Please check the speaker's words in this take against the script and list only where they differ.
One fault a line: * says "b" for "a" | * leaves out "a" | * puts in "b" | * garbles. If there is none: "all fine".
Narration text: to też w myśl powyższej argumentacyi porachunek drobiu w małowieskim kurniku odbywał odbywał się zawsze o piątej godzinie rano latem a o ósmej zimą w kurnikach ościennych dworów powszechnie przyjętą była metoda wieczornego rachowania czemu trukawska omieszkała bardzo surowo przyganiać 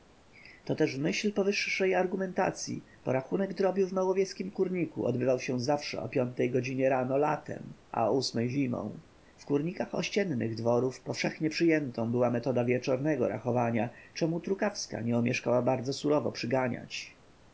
* leaves out "odbywał"
* puts in "nie"